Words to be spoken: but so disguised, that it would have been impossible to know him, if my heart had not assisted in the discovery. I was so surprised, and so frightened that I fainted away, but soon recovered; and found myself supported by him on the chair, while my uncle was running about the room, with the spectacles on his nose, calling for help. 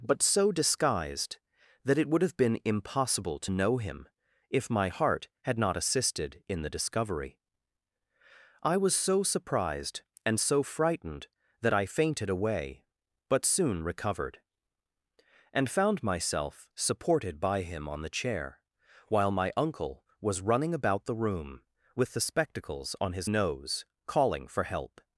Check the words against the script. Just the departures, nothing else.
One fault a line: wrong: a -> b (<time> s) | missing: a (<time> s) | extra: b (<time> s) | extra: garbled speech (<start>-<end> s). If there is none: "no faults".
no faults